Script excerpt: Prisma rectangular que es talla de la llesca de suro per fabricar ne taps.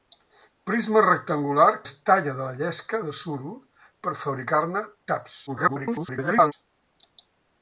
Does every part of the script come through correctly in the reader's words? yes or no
no